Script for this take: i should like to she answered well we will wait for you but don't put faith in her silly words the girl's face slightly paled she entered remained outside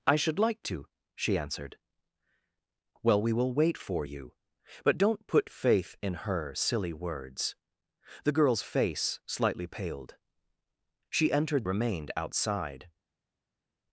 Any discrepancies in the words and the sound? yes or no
no